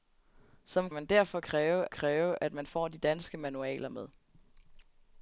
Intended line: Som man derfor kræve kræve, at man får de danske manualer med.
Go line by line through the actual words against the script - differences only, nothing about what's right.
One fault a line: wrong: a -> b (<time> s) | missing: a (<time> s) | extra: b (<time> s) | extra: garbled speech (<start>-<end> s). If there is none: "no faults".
no faults